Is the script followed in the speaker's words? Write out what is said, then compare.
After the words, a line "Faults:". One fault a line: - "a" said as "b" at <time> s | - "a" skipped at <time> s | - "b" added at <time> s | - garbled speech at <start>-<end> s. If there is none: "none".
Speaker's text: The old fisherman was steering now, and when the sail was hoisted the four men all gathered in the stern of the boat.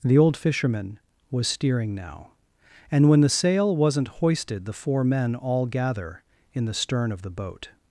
The old fisherman was steering now, and when the sail wasn't hoisted the four men all gather in the stern of the boat.
Faults:
- "was" said as "wasn't" at 3.8 s
- "gathered" said as "gather" at 5.7 s